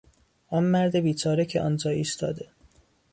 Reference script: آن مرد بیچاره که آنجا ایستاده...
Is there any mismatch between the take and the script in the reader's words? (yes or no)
no